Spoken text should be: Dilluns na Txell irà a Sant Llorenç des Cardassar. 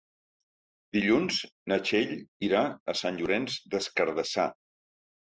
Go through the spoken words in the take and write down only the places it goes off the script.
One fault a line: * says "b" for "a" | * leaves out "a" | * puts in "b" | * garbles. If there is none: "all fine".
all fine